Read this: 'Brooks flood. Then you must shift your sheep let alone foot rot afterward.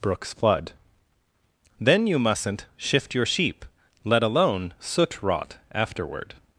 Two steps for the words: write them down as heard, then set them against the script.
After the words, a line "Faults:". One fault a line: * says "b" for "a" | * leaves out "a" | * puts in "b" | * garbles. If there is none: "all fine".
'Brooks flood. Then you mustn't shift your sheep let alone soot rot afterward.
Faults:
* says "mustn't" for "must"
* says "soot" for "foot"